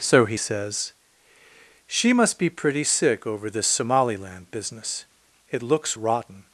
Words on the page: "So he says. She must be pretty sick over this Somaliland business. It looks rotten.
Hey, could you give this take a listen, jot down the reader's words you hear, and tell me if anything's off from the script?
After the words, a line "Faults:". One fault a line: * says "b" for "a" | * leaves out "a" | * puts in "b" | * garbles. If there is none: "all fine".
"So he says. She must be pretty sick over this Somaliland business. It looks rotten.
Faults:
all fine